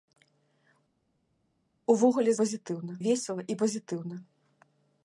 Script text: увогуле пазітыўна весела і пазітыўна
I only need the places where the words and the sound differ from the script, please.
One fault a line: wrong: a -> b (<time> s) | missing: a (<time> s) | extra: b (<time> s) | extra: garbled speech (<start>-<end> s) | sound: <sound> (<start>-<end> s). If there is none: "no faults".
no faults